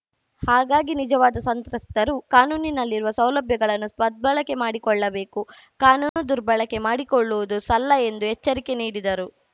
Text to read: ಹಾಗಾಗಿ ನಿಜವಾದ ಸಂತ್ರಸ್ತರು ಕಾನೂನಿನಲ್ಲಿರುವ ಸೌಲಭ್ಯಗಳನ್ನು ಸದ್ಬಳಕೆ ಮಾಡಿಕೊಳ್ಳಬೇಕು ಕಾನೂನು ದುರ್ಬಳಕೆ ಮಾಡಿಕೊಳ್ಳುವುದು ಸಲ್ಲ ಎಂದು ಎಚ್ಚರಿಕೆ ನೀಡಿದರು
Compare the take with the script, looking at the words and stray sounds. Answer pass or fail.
fail